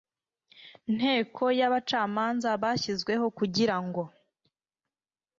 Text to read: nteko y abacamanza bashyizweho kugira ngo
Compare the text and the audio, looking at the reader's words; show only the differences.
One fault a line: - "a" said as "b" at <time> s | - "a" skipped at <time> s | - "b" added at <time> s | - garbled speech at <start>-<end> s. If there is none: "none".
none